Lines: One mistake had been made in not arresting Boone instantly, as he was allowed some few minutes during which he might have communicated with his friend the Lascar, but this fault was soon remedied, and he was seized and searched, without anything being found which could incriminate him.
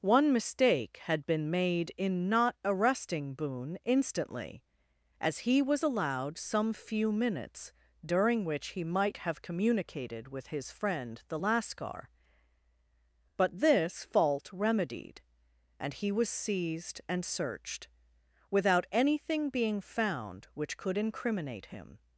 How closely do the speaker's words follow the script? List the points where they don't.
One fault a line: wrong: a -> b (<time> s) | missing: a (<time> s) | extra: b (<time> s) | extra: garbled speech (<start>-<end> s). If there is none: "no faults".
missing: was soon (14.5 s)